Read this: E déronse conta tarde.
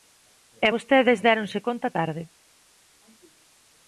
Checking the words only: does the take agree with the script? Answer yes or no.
no